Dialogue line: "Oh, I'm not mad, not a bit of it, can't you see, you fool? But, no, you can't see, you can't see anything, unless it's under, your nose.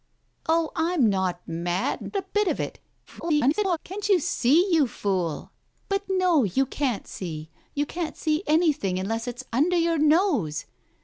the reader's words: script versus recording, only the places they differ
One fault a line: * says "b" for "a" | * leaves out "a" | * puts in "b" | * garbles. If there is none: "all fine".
* leaves out "not"
* garbles